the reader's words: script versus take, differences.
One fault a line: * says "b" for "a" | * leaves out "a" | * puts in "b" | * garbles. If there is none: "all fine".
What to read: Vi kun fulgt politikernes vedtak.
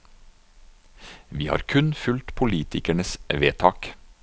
* puts in "har"